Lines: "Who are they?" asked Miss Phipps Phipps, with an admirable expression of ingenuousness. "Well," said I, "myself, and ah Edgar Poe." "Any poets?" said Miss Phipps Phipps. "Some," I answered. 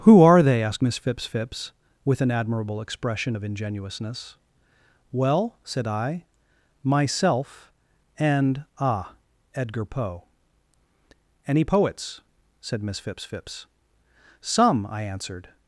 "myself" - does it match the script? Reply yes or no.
yes